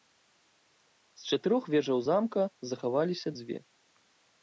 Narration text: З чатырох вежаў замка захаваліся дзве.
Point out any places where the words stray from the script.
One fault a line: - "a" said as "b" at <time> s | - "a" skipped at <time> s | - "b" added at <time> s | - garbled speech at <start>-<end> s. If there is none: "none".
none